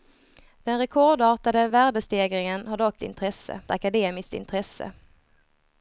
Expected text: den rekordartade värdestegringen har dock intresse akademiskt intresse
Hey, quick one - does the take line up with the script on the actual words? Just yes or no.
yes